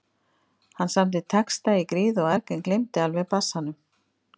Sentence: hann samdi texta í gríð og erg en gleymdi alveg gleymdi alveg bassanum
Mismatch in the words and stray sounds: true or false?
true